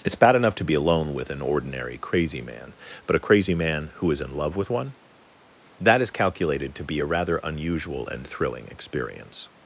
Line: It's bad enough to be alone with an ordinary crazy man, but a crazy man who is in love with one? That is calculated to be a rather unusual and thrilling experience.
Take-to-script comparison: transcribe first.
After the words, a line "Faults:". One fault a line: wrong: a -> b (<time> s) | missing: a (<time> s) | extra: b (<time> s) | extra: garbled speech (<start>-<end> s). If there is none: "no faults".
It's bad enough to be alone with an ordinary crazy man, but a crazy man who is in love with one? That is calculated to be a rather unusual and thrilling experience.
Faults:
no faults